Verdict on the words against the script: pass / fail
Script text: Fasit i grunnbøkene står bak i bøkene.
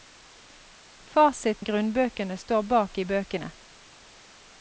pass